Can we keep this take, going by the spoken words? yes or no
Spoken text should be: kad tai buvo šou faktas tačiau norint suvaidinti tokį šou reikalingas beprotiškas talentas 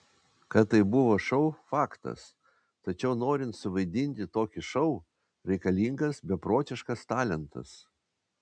yes